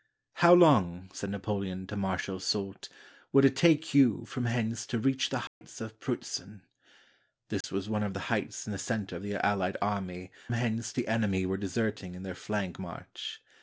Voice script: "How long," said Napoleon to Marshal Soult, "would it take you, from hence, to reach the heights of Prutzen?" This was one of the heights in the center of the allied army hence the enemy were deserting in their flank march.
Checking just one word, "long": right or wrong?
right